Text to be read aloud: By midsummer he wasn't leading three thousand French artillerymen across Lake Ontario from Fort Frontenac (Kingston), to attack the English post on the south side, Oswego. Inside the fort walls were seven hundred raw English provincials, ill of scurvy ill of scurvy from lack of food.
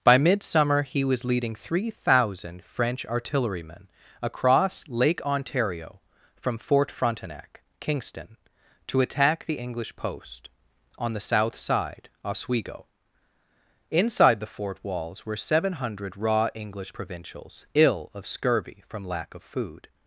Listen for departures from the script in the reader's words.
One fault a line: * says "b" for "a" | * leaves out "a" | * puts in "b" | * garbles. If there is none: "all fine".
* says "was" for "wasn't"
* leaves out "ill of scurvy"